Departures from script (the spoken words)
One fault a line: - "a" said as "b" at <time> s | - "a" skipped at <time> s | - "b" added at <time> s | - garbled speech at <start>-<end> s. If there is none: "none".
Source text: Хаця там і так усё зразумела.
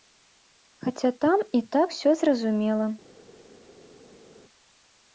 none